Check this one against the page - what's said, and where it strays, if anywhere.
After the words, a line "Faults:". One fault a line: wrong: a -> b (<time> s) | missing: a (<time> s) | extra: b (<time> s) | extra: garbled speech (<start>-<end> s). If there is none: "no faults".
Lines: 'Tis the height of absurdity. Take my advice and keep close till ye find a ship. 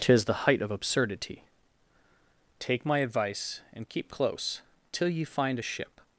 'Tis the height of absurdity. Take my advice and keep close till ye find a ship.
Faults:
no faults